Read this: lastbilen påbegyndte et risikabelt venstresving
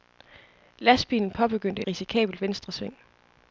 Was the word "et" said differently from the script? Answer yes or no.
yes